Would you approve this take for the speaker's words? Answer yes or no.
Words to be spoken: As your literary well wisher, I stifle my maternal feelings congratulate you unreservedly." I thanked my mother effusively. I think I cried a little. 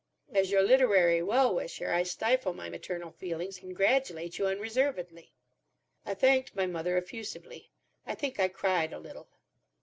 yes